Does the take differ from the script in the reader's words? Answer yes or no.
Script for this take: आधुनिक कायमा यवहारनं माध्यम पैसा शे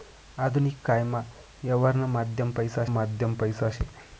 yes